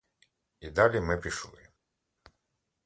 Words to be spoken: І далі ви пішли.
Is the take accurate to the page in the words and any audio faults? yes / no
no